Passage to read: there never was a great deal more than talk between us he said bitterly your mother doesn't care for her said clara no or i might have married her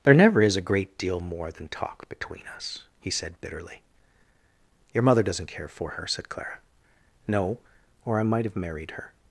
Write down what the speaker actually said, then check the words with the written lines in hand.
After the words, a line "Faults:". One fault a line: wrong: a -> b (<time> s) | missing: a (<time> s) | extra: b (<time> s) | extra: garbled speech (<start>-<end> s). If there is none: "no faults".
there never is a great deal more than talk between us he said bitterly your mother doesn't care for her said clara no or i might have married her
Faults:
wrong: was -> is (0.4 s)